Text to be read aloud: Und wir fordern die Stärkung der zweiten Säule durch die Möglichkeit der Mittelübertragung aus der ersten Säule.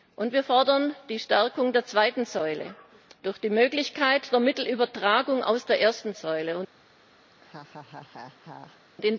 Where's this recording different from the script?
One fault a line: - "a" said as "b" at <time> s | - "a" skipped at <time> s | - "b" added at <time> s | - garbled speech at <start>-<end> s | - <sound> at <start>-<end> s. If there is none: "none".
- laugh at 7.3-8.8 s